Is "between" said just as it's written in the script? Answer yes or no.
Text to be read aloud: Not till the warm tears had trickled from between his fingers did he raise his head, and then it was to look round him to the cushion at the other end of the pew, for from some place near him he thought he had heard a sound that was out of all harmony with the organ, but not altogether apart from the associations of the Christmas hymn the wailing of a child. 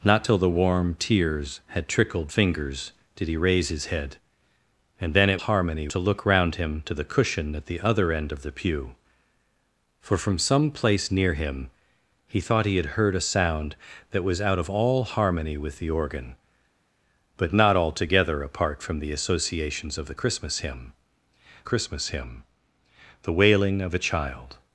no